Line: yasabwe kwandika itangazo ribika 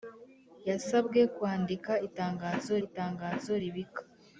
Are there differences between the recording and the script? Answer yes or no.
yes